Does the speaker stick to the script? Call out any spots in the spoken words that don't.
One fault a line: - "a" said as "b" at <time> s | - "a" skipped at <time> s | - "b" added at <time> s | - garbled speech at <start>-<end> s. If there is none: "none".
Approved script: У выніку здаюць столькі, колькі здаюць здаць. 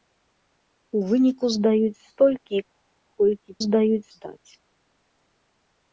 none